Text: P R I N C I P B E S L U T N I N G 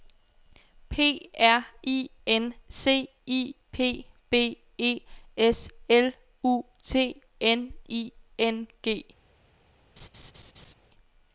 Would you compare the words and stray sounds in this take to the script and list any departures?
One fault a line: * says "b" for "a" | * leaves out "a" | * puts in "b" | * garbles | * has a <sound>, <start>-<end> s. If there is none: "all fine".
* has a laugh, 10.0-10.7 s